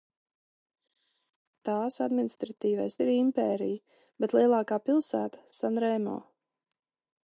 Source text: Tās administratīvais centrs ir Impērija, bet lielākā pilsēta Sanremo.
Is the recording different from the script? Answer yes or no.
yes